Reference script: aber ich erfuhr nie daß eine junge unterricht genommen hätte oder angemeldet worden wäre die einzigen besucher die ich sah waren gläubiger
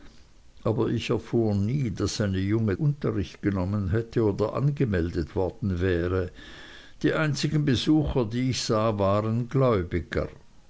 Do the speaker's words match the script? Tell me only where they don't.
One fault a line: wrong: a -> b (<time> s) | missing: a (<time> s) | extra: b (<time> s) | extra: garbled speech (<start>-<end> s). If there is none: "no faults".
no faults